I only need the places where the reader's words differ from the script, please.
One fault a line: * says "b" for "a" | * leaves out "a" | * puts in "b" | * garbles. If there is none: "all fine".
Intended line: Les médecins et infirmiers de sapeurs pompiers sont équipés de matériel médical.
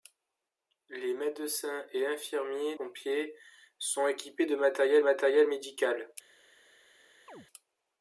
* leaves out "de sapeurs"
* puts in "matériel"